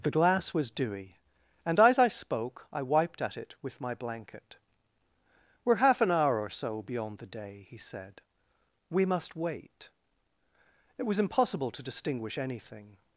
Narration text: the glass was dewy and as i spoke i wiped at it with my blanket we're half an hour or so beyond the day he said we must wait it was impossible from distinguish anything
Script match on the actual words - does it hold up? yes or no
no